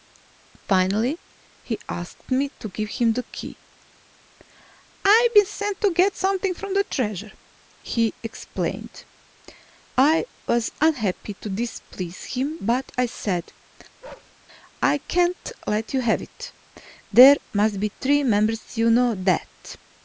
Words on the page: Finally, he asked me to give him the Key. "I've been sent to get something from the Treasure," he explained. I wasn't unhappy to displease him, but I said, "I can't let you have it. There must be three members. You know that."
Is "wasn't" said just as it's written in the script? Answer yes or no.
no